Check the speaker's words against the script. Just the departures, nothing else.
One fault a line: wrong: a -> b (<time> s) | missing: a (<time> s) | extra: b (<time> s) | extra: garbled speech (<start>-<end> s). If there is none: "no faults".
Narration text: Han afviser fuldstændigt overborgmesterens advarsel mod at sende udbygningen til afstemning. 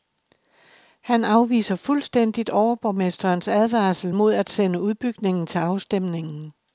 no faults